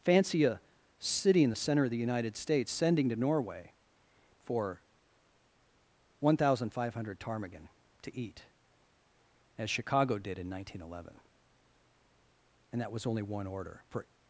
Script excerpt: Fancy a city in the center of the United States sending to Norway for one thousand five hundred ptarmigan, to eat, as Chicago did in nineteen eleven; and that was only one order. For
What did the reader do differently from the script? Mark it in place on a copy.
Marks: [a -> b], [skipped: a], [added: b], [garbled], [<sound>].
Fancy a city in the center of the United States sending to Norway for one thousand five hundred ptarmigan, to eat, as Chicago did in nineteen eleven; and that was only one order. For